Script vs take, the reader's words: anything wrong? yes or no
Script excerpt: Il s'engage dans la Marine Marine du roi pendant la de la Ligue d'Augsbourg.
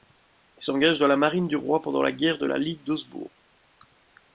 yes